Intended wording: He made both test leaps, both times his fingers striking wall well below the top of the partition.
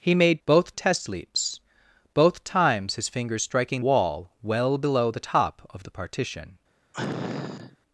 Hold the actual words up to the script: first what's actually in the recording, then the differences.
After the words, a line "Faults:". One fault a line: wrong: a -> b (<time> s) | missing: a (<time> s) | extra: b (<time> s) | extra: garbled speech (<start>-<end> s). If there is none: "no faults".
He made both test leaps, both times his fingers striking wall well below the top of the partition.
Faults:
no faults